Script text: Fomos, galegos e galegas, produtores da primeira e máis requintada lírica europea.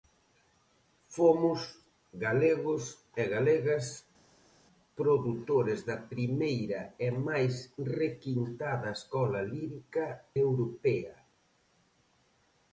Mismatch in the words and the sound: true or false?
true